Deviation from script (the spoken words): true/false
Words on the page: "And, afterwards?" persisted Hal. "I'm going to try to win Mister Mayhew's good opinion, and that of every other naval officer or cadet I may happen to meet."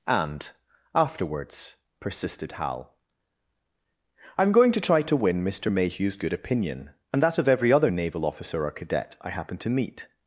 true